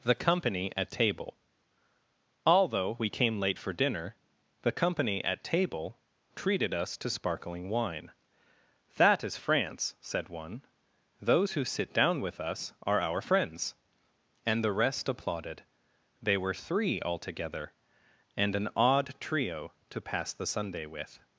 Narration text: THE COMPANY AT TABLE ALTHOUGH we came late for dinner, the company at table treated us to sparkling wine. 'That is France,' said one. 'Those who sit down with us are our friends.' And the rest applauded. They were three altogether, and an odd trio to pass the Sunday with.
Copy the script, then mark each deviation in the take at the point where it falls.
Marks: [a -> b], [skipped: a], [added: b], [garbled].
THE COMPANY AT TABLE ALTHOUGH we came late for dinner, the company at table treated us to sparkling wine. 'That is France,' said one. 'Those who sit down with us are our friends.' And the rest applauded. They were three altogether, and an odd trio to pass the Sunday with.